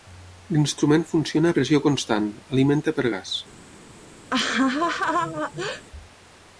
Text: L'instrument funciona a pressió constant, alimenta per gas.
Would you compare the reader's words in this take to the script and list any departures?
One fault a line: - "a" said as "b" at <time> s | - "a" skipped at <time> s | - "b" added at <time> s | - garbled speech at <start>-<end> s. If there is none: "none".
none